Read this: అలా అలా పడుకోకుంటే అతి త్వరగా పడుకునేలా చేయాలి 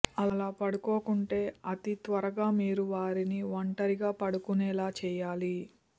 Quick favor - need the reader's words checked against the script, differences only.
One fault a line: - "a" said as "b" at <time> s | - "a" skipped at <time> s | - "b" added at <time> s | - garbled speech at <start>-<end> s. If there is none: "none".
- "అలా" skipped at 0.5 s
- "మీరు వారిని ఒంటరిగా" added at 2.6 s